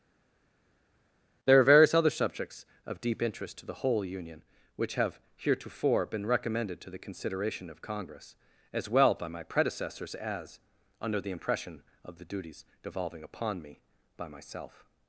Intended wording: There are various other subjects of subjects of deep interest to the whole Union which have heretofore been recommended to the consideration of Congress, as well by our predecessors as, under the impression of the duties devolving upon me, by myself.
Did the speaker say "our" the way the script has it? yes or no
no